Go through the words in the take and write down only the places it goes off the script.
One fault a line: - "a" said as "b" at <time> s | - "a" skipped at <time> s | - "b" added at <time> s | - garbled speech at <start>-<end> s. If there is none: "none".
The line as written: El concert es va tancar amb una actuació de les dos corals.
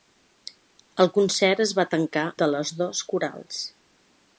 - "amb una actuació" skipped at 2.2 s